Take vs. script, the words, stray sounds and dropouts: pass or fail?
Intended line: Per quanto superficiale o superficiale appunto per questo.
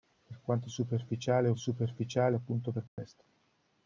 fail